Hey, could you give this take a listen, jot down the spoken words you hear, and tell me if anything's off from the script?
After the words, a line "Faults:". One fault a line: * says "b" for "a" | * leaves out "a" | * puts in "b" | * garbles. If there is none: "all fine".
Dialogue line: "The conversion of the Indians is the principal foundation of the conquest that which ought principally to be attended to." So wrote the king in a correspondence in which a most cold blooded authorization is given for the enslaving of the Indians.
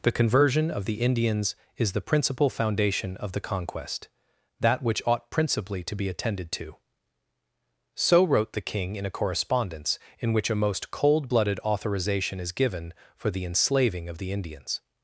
"The conversion of the Indians is the principal foundation of the conquest that which ought principally to be attended to." So wrote the king in a correspondence in which a most cold blooded authorization is given for the enslaving of the Indians.
Faults:
all fine